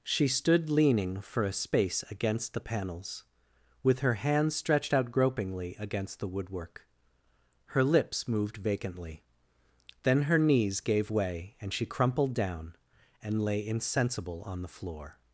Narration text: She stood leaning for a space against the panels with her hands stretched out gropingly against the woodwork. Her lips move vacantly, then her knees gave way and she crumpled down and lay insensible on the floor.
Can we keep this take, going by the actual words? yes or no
no